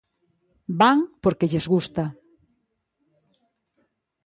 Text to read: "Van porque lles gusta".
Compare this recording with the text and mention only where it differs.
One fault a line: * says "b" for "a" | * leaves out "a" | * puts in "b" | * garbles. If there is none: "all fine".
all fine